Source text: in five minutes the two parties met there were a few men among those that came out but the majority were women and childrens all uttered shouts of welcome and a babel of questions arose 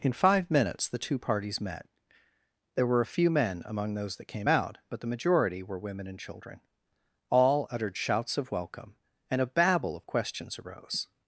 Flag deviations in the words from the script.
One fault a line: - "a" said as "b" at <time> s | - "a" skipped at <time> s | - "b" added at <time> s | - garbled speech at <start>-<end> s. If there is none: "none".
- "childrens" said as "children" at 6.2 s